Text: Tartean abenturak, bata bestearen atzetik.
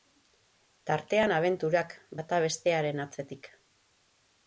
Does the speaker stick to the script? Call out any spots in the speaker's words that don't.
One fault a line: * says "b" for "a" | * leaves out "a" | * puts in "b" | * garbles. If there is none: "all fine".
all fine